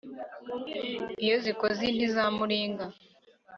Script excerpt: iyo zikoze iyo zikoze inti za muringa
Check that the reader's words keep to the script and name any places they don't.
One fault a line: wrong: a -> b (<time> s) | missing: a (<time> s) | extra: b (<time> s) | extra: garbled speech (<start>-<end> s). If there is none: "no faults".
missing: iyo zikoze (1.8 s)